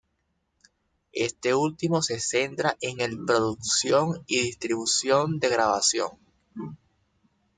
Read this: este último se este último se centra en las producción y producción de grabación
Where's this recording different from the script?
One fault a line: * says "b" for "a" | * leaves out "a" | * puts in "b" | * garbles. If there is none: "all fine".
* leaves out "este último se"
* says "el" for "las"
* says "distribución" for "producción"